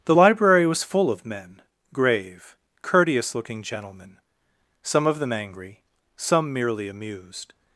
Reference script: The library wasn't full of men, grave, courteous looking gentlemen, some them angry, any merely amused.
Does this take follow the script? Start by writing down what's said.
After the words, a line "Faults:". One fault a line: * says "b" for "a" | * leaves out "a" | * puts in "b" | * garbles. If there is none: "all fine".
The library was full of men, grave, courteous looking gentlemen, some of them angry, some merely amused.
Faults:
* says "was" for "wasn't"
* puts in "of"
* says "some" for "any"